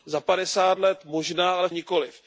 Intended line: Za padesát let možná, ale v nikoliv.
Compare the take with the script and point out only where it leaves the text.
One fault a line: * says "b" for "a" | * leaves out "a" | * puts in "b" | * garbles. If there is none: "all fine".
all fine